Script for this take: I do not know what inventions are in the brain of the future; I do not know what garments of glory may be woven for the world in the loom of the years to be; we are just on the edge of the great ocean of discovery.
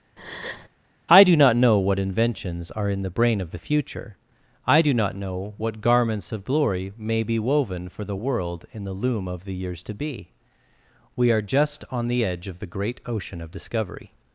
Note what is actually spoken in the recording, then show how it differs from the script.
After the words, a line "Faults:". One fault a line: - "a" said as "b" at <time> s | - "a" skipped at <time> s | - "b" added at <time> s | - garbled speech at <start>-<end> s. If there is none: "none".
I do not know what inventions are in the brain of the future; I do not know what garments of glory may be woven for the world in the loom of the years to be; we are just on the edge of the great ocean of discovery.
Faults:
none